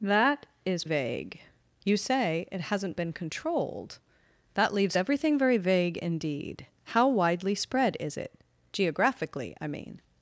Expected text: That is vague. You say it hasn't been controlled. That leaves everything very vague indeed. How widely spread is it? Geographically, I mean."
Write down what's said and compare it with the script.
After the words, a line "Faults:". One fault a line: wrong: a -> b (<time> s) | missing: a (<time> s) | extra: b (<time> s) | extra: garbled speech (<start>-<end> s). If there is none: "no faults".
That is vague. You say it hasn't been controlled. That leaves everything very vague indeed. How widely spread is it? Geographically, I mean."
Faults:
no faults